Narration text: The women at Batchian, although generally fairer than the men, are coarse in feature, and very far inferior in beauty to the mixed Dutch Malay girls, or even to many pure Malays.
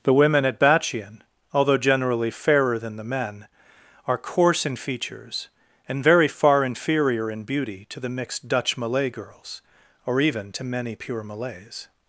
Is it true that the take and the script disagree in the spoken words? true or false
true